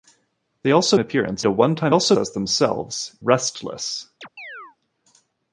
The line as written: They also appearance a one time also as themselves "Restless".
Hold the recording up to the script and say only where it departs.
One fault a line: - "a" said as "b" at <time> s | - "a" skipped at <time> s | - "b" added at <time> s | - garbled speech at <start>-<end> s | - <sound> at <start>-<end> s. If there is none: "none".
- chirp at 4.2-4.8 s